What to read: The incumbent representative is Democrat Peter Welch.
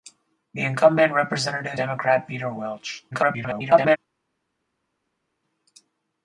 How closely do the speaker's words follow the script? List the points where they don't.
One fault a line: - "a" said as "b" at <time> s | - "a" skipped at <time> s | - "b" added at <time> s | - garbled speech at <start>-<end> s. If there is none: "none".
- "is" skipped at 1.8 s
- garbled speech at 3.1-4.0 s